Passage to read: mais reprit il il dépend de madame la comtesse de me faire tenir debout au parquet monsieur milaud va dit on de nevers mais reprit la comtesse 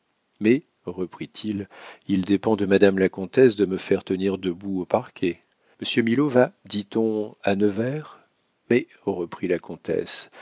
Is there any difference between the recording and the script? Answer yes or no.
yes